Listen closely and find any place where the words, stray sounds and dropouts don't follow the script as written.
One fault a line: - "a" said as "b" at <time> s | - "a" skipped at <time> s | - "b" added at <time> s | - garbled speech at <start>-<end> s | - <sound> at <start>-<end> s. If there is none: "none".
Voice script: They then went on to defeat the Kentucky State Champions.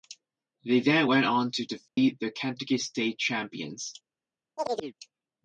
- dropout at 1.9-2.0 s
- chirp at 4.6-4.9 s